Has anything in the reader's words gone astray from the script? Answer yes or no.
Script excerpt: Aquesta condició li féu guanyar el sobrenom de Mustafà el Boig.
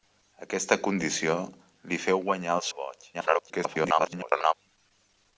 yes